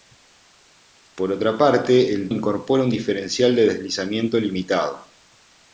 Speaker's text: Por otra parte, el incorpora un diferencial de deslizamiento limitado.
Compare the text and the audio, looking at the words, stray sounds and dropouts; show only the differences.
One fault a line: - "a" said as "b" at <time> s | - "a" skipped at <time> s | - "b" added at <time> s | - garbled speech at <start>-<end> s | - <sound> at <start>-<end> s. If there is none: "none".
none